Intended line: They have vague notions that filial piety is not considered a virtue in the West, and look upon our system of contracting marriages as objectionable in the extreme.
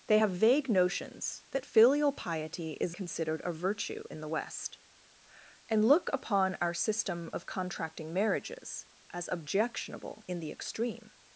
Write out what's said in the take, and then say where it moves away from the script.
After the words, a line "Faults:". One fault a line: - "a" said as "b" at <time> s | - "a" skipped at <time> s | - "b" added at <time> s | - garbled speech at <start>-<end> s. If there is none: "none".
They have vague notions that filial piety is considered a virtue in the West, and look upon our system of contracting marriages as objectionable in the extreme.
Faults:
- "not" skipped at 3.0 s